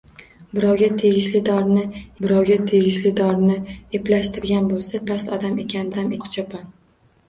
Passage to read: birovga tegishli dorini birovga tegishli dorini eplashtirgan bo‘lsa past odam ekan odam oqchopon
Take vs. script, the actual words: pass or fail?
pass